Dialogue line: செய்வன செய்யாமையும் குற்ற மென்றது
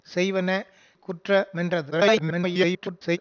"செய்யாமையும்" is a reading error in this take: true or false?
true